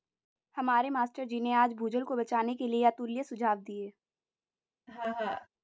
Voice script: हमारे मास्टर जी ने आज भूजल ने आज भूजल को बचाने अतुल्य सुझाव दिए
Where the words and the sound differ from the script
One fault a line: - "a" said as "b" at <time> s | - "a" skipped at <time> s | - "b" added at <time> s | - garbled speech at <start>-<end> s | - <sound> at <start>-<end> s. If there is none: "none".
- "ने आज भूजल को बचाने" said as "को बचाने के लिए" at 2.0 s
- laugh at 4.9-5.5 s